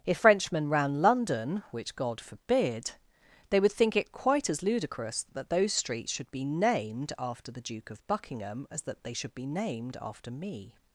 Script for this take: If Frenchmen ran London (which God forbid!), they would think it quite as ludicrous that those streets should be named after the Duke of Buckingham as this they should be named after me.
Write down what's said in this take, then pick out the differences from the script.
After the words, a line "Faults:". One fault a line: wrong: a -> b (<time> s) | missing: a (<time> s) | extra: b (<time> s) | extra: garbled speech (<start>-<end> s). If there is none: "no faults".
If Frenchmen ran London (which God forbid!), they would think it quite as ludicrous that those streets should be named after the Duke of Buckingham as that they should be named after me.
Faults:
wrong: this -> that (8.8 s)